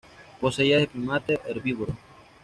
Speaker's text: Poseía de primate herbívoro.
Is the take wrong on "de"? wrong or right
right